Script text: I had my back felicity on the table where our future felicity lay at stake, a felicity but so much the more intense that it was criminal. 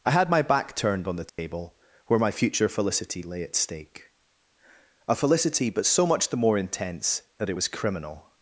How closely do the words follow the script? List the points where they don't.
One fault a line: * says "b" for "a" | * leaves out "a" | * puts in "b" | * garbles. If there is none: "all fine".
* says "turned" for "felicity"
* says "my" for "our"